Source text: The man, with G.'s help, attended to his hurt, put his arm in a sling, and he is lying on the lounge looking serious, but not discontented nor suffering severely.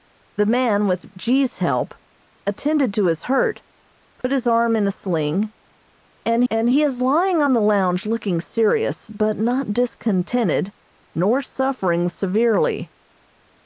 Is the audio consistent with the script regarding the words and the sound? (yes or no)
no